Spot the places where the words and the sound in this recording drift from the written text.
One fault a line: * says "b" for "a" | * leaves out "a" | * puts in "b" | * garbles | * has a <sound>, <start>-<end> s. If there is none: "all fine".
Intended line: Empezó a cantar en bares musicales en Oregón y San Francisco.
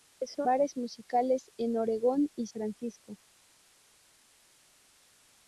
* leaves out "a cantar en"
* leaves out "San"